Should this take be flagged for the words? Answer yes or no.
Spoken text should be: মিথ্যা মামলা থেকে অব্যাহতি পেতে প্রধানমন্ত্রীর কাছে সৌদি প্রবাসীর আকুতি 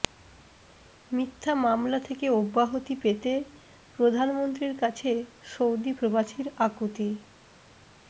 no